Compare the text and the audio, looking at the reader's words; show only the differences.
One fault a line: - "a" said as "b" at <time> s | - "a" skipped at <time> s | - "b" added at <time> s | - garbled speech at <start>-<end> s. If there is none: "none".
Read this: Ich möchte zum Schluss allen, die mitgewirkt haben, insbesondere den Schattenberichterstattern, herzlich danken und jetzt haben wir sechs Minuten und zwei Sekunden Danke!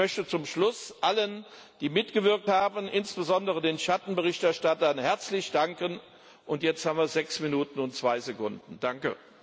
none